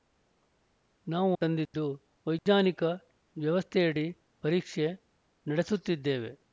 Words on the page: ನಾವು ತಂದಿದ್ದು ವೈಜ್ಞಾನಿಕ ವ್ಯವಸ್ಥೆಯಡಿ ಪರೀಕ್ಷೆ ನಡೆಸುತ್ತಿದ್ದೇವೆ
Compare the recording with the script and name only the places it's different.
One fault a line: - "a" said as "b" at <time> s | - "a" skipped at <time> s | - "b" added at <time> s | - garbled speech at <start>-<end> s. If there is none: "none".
none